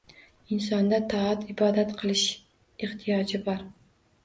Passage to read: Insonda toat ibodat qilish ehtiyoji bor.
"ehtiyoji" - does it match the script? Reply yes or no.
yes